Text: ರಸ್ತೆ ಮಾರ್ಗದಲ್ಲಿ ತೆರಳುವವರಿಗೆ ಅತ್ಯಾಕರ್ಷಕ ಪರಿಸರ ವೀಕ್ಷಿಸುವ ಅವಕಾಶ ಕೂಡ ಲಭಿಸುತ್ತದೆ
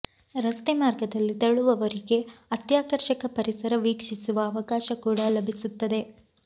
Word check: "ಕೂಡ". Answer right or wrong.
right